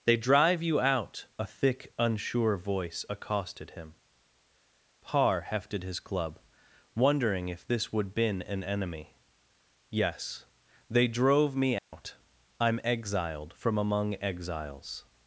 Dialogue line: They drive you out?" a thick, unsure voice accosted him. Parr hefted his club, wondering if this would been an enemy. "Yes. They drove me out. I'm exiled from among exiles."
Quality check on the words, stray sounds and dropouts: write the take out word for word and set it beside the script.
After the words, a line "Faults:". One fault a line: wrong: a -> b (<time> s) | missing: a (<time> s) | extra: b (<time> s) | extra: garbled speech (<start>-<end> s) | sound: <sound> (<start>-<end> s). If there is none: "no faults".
They drive you out?" a thick, unsure voice accosted him. Parr hefted his club, wondering if this would been an enemy. "Yes. They drove me out. I'm exiled from among exiles."
Faults:
sound: dropout (11.8-11.9 s)